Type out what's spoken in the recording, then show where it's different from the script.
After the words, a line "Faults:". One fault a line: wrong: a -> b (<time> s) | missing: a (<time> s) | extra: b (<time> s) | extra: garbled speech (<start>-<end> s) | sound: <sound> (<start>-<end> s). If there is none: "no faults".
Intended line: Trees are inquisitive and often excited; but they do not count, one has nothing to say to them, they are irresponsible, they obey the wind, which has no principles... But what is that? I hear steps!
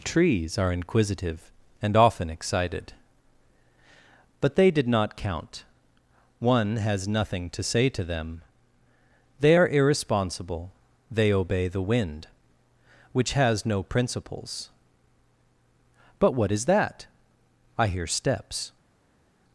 Trees are inquisitive and often excited; but they did not count, one has nothing to say to them, they are irresponsible, they obey the wind, which has no principles... But what is that? I hear steps!
Faults:
wrong: do -> did (4.7 s)